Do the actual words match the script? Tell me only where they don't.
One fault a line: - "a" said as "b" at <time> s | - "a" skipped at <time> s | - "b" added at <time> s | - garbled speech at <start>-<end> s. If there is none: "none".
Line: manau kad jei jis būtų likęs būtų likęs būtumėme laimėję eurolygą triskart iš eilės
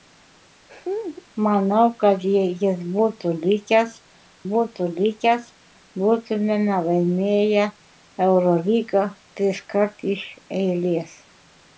none